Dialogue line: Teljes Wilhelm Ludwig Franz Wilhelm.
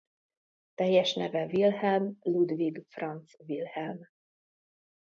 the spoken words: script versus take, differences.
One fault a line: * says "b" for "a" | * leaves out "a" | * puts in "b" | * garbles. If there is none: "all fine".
* puts in "neve"